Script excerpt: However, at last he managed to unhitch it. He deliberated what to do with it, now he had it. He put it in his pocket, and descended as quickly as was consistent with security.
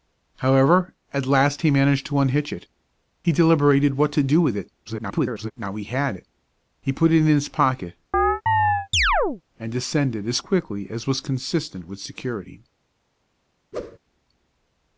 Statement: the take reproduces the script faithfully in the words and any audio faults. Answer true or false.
false